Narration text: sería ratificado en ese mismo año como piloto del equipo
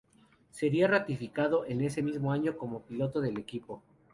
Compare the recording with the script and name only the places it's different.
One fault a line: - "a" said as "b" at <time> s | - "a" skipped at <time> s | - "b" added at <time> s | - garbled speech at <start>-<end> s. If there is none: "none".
none